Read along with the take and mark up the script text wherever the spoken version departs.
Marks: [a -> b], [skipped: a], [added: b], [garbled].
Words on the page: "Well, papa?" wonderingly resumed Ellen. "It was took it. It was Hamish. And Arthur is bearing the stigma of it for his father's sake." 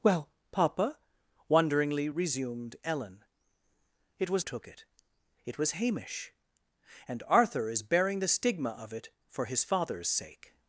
"Well, papa?" wonderingly resumed Ellen. "It was took it. It was Hamish. And Arthur is bearing the stigma of it for his father's sake."